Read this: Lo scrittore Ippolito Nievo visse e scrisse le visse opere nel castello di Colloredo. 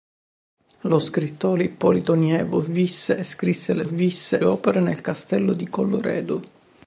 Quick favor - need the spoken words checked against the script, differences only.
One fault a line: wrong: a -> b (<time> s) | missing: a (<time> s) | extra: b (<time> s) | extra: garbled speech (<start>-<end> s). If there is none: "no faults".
no faults